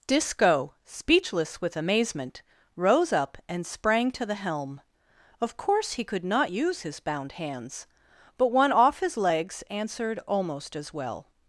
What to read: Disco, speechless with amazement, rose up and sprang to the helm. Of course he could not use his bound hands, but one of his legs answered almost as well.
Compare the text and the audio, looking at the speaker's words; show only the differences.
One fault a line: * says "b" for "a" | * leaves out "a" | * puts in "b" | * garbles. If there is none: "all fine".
* says "off" for "of"